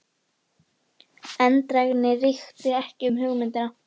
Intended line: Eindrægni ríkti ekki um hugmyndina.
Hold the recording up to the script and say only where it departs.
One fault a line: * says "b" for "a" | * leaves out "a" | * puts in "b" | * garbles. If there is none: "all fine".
all fine